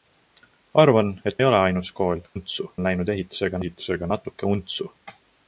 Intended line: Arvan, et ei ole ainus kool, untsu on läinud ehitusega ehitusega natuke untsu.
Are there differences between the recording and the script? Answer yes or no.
no